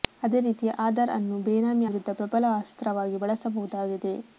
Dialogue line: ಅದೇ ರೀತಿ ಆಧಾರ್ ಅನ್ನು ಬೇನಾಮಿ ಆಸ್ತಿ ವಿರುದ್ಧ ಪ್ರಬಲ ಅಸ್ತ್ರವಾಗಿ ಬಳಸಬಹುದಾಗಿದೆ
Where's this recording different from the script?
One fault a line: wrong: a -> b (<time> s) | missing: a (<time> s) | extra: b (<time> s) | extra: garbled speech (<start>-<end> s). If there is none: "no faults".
missing: ಆಸ್ತಿ (1.9 s)